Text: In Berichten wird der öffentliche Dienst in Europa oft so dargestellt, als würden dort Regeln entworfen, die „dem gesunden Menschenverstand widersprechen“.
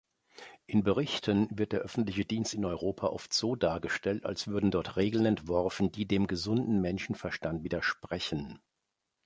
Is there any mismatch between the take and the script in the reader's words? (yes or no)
no